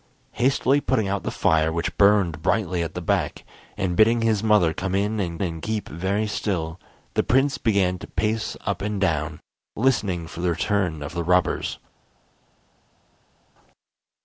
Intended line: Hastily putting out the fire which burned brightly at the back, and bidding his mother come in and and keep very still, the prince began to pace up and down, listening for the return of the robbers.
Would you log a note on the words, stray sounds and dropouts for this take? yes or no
no